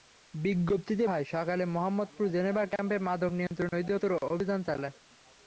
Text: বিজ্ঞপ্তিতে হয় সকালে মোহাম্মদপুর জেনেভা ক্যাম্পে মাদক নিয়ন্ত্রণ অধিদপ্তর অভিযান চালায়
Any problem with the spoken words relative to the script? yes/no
no